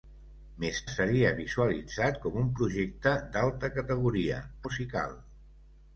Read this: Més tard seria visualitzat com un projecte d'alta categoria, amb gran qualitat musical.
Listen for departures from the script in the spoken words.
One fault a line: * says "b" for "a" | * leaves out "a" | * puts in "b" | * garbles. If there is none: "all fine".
* leaves out "tard"
* leaves out "amb gran qualitat"